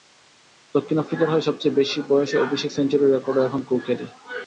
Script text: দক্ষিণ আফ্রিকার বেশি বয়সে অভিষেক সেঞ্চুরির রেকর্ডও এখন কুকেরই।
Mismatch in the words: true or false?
true